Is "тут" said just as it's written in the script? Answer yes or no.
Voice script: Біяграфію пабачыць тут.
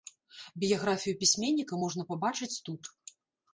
yes